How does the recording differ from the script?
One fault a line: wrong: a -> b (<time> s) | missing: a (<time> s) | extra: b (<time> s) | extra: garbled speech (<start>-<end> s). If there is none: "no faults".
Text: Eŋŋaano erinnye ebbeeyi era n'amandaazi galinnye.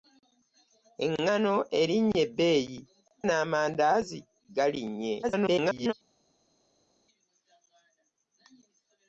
missing: era (2.8 s)
extra: garbled speech (5.2-5.9 s)